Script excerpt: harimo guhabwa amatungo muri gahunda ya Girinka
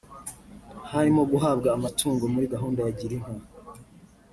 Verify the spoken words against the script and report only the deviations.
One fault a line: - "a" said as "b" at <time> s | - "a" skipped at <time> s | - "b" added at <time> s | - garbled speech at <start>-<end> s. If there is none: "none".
none